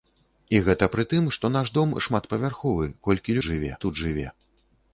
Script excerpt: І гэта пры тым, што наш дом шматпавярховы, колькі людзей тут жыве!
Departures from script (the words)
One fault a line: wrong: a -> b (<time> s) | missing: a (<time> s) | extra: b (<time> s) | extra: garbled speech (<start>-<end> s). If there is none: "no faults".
wrong: людзей -> жыве (3.5 s)